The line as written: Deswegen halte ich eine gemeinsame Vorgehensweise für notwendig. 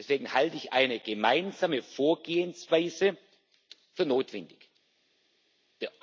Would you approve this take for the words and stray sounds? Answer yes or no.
yes